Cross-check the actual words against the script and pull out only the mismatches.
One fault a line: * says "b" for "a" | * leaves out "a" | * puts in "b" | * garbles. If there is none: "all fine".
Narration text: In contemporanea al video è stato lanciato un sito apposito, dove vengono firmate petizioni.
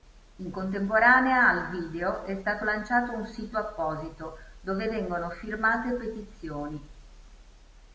all fine